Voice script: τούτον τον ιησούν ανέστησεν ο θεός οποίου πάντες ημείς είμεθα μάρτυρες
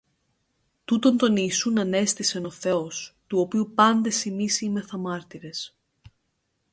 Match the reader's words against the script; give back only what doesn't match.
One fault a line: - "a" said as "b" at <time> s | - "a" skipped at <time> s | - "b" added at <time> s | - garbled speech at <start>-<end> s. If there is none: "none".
- "του" added at 3.3 s